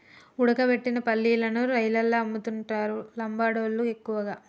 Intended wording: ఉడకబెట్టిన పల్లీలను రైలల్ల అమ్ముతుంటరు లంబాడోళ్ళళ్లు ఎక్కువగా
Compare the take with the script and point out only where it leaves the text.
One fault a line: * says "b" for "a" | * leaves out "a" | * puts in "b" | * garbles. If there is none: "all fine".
all fine